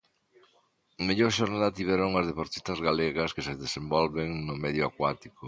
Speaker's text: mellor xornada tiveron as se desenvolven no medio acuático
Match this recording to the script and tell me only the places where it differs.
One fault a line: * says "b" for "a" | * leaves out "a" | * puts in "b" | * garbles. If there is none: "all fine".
* puts in "deportistas galegas que"